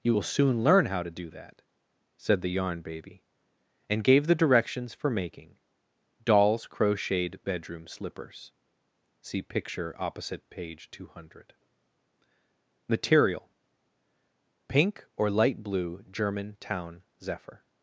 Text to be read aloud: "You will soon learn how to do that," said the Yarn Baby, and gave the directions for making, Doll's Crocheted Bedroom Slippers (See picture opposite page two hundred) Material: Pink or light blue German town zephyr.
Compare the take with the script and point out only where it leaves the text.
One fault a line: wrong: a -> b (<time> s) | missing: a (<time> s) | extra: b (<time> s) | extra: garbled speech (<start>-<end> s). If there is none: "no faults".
no faults